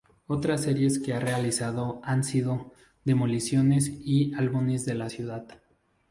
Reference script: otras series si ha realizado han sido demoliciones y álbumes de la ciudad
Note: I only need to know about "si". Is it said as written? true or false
false